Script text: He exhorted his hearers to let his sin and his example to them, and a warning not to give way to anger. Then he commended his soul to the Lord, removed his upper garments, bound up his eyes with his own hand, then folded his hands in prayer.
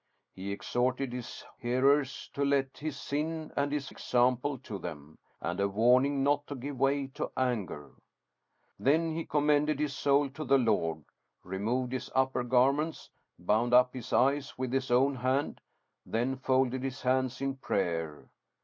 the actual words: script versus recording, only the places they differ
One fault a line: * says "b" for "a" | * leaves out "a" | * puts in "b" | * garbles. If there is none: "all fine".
all fine